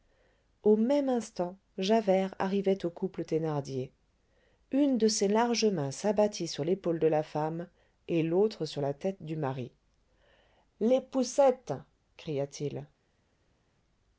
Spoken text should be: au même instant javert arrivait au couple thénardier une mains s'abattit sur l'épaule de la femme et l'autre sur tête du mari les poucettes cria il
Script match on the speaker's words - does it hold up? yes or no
no